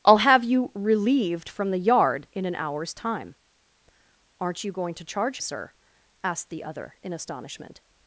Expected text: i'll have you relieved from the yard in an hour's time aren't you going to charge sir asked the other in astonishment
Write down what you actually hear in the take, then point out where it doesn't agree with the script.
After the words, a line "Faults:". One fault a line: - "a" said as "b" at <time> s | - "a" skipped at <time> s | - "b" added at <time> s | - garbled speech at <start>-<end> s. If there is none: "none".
i'll have you relieved from the yard in an hour's time aren't you going to charge sir asked the other in astonishment
Faults:
none